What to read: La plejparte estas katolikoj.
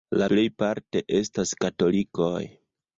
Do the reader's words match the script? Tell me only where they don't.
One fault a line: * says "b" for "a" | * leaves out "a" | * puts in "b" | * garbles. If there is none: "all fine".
all fine